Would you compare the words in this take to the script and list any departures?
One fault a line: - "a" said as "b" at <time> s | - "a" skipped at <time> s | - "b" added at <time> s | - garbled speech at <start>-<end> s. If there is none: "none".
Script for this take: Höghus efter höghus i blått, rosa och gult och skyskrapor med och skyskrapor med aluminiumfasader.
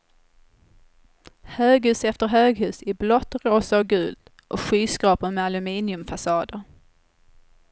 - "och skyskrapor med" skipped at 5.4 s